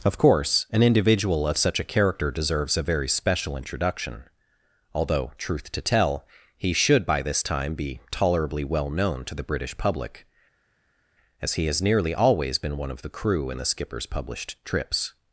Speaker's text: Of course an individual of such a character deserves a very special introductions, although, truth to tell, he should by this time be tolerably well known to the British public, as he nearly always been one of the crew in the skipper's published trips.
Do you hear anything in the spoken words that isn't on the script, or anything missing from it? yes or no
yes